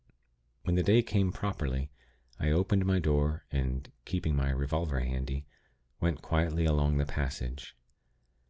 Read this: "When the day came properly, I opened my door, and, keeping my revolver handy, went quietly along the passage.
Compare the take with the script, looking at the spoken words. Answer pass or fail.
pass